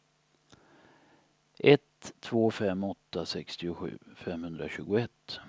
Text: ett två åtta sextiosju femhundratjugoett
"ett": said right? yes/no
yes